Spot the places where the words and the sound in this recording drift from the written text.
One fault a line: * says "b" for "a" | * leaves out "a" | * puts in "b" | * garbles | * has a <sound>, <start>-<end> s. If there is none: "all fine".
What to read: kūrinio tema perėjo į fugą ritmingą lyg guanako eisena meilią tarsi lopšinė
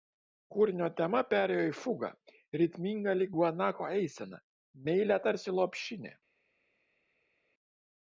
all fine